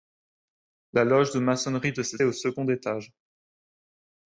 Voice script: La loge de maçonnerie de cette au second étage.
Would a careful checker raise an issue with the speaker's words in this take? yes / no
no